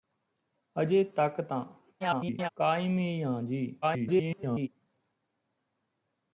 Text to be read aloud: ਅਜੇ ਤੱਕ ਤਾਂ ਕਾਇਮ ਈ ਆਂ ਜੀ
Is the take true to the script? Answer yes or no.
no